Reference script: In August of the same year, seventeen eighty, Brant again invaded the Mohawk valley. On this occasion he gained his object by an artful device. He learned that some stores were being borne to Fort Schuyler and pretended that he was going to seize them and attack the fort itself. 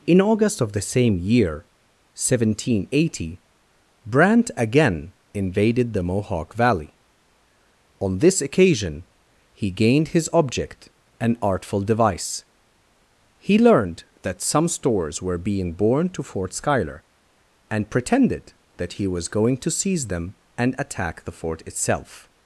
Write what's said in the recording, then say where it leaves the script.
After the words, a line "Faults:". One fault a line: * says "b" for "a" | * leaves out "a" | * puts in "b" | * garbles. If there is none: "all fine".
In August of the same year, seventeen eighty, Brant again invaded the Mohawk valley. On this occasion he gained his object an artful device. He learned that some stores were being borne to Fort Schuyler and pretended that he was going to seize them and attack the fort itself.
Faults:
* leaves out "by"